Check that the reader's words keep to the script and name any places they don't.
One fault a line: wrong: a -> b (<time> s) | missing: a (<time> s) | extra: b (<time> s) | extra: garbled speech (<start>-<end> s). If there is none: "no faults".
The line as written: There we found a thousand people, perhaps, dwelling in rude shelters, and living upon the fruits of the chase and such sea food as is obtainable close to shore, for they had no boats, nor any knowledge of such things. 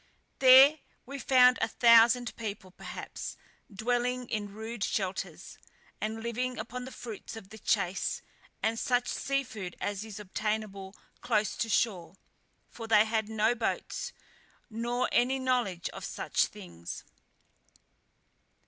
no faults